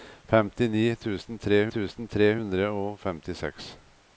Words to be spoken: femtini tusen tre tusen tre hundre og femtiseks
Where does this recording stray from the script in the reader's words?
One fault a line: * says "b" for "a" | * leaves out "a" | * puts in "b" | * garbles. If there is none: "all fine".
all fine